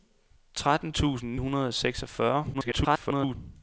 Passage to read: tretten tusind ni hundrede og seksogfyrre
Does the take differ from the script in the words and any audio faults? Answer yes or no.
yes